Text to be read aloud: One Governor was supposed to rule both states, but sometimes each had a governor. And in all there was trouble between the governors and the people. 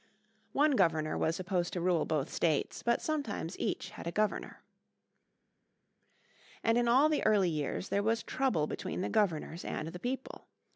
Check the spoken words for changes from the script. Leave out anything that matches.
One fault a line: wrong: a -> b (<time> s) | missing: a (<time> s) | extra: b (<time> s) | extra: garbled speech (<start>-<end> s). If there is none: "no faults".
extra: the early years (7.1 s)